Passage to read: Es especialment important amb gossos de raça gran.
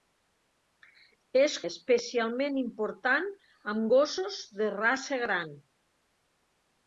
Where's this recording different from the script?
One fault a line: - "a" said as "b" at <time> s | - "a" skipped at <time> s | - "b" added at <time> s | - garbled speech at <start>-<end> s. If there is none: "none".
none